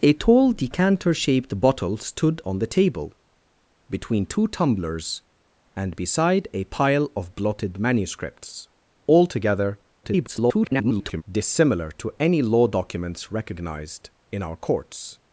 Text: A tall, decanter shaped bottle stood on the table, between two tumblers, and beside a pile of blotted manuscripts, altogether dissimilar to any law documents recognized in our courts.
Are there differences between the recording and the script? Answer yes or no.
yes